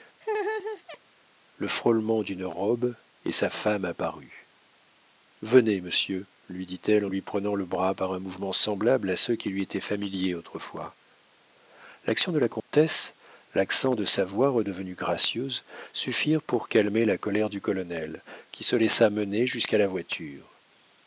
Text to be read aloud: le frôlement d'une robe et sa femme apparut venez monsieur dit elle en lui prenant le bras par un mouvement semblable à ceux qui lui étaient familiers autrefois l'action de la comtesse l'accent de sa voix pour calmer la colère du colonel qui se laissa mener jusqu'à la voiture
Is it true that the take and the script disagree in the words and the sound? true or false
true